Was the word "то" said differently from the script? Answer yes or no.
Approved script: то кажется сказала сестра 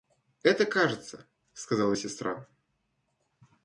yes